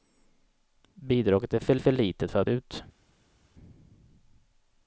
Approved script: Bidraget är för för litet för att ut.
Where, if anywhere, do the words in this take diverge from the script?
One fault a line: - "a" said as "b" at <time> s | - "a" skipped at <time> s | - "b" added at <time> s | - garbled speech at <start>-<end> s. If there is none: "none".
none